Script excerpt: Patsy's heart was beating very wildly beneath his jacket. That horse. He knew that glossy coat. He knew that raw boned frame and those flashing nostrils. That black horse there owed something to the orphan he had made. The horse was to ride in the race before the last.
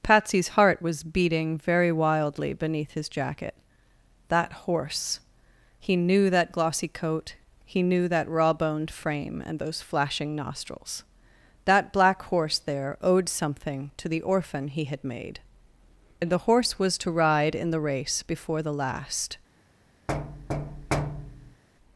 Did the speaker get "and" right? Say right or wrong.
right